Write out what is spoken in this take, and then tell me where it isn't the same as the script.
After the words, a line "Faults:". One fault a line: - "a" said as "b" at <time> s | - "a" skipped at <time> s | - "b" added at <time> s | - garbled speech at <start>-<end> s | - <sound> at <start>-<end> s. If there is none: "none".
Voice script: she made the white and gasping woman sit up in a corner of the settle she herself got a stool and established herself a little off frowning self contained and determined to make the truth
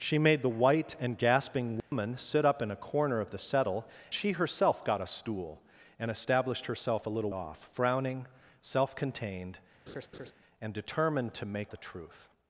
she made the white and gasping woman sit up in a corner of the settle she herself got a stool and established herself a little off frowning self contained and determined to make the truth
Faults:
- dropout at 1.8-1.9 s
- laugh at 9.9-10.3 s